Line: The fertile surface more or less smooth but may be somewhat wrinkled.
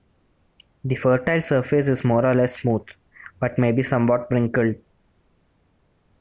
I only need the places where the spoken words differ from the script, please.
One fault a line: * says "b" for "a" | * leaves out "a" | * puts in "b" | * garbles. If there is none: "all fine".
* puts in "is"